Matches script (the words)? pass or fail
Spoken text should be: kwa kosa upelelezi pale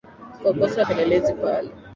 pass